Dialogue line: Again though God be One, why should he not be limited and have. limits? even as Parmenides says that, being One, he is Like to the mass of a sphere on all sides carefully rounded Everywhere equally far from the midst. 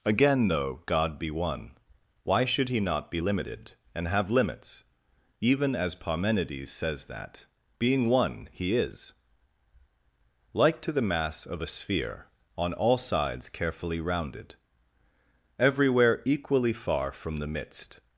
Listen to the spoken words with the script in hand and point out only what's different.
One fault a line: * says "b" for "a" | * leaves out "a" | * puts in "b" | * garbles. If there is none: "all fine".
all fine